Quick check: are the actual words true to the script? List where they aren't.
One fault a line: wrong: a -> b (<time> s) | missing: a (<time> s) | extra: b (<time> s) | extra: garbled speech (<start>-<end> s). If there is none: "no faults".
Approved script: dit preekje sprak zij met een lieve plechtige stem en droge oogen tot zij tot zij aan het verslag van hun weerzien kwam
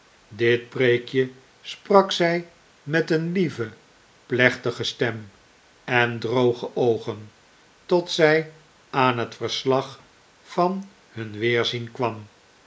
missing: tot zij (8.5 s)